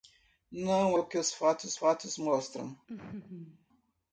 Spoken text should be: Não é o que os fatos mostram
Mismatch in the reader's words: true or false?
true